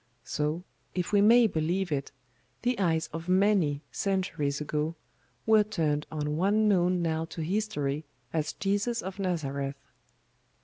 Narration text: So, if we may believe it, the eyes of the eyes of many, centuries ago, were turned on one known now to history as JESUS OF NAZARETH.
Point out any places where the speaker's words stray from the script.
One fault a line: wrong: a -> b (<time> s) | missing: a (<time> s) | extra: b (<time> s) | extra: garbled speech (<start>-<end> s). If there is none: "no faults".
missing: the eyes of (3.3 s)